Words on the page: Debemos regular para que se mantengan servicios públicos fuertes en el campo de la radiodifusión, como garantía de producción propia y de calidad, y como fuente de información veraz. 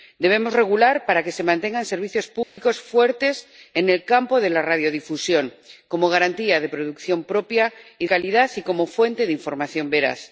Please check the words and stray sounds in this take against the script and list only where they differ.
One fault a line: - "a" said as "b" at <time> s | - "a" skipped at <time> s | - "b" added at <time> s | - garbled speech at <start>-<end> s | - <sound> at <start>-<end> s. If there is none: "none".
- dropout at 2.4-2.6 s
- "de" skipped at 8.1 s